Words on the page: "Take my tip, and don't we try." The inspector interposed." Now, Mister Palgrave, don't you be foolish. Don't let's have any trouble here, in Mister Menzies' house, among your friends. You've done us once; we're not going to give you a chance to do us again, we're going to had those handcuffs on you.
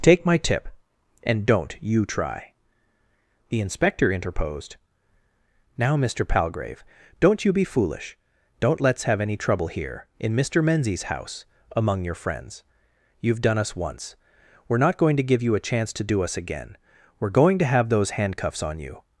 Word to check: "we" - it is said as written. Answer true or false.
false